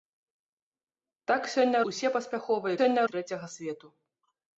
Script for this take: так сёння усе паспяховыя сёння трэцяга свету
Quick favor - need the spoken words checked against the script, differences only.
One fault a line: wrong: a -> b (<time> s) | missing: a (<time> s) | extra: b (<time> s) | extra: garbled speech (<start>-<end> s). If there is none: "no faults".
no faults